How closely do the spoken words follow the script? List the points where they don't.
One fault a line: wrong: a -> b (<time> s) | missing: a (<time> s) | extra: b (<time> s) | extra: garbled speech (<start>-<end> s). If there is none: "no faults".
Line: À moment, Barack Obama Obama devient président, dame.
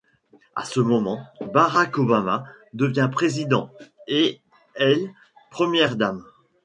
extra: ce (0.7 s)
missing: Obama (2.5 s)
extra: et elle première (4.1 s)